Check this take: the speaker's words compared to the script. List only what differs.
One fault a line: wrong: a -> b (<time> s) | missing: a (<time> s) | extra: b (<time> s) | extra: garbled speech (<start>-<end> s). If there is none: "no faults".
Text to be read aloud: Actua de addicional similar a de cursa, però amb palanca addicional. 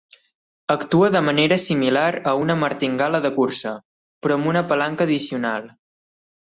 wrong: addicional -> manera (1.3 s)
extra: una martingala (2.5 s)
extra: una (4.5 s)